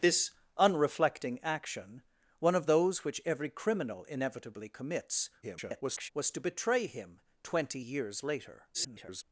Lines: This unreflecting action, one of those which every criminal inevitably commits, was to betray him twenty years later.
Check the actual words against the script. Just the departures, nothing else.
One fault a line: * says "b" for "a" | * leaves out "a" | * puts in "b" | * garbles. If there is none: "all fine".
* garbles
* garbles